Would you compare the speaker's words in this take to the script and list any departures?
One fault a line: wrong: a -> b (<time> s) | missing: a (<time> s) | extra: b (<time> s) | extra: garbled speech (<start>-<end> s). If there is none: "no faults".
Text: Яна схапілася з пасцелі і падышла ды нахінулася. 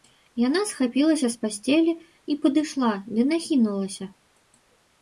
no faults